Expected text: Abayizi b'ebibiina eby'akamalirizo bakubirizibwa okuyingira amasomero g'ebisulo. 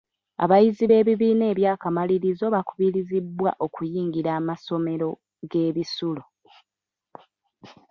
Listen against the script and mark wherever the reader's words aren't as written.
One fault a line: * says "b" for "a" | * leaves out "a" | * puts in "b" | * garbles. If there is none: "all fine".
all fine